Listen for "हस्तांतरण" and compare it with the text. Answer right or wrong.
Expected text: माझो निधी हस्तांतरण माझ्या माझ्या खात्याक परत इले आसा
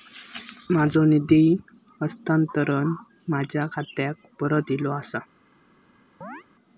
right